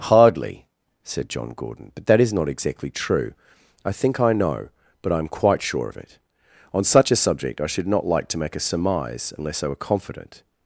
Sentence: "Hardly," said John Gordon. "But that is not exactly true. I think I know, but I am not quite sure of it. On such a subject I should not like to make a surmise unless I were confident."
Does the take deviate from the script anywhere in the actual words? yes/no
yes